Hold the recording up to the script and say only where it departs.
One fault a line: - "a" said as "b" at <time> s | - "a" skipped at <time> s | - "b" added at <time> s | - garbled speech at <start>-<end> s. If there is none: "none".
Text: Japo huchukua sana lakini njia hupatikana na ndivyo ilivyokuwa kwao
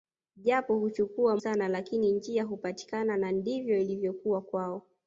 none